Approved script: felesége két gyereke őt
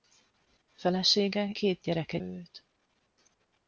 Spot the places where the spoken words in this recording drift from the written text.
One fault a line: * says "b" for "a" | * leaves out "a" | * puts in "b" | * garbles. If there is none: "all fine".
all fine